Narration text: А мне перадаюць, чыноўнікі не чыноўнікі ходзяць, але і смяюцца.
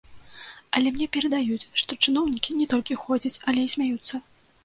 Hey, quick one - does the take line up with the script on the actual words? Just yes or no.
no